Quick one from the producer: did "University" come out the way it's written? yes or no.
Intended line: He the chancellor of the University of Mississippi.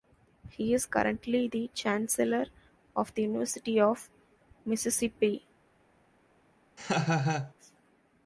yes